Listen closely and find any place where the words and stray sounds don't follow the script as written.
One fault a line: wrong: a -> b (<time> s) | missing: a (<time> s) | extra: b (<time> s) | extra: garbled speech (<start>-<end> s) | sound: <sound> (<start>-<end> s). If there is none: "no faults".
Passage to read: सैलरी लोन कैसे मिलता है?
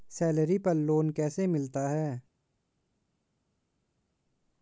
extra: पर (0.6 s)